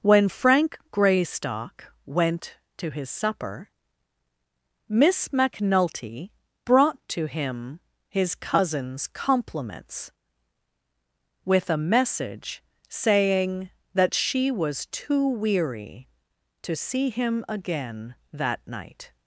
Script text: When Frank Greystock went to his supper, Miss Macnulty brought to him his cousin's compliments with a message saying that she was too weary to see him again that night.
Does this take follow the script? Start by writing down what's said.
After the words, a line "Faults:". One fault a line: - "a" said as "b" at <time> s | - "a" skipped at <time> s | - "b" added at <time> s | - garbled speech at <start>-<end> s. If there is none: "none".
When Frank Greystock went to his supper, Miss Macnulty brought to him his cousin's compliments with a message saying that she was too weary to see him again that night.
Faults:
none